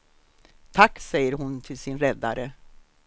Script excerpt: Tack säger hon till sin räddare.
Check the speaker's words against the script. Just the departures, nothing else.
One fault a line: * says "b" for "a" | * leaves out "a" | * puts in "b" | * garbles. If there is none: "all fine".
all fine